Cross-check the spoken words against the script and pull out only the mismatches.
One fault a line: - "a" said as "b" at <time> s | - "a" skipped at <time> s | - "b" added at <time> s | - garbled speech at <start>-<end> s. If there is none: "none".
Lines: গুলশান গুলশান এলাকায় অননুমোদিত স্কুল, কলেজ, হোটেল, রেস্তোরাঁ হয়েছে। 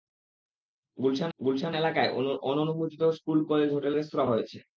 none